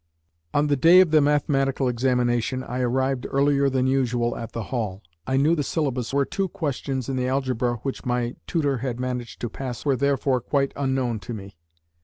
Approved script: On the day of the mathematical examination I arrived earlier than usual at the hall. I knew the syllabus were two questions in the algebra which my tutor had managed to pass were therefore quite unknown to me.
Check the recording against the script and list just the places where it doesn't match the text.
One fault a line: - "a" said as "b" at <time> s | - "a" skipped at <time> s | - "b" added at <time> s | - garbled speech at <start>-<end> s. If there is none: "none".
none